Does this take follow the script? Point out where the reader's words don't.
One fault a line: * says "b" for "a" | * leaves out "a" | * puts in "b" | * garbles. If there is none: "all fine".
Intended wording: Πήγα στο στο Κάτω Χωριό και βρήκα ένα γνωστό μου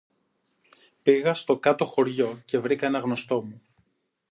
* leaves out "στο"